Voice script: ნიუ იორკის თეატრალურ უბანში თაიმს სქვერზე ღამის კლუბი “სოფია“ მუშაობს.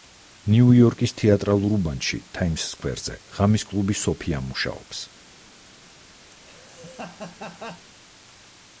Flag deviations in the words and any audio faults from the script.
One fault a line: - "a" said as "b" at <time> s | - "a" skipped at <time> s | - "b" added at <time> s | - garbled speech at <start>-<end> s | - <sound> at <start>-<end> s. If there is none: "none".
- laugh at 6.3-7.9 s